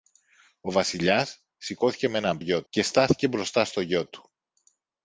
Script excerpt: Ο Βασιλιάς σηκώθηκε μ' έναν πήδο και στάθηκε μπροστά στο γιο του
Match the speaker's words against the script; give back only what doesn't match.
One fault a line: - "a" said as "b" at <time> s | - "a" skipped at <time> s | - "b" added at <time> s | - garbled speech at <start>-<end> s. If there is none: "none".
- "πήδο" said as "γιο" at 2.4 s